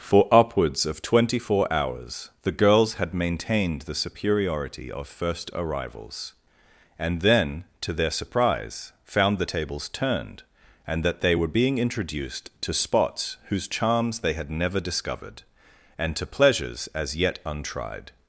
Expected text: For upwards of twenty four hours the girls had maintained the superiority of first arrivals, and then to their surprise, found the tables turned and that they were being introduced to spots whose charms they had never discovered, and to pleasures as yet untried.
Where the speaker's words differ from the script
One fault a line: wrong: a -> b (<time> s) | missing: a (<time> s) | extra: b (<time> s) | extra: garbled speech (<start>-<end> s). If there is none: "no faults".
no faults